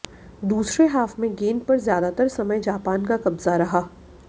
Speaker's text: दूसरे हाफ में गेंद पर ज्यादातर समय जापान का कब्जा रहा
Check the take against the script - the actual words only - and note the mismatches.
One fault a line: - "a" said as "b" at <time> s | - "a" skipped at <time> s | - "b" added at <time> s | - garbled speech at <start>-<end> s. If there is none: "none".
none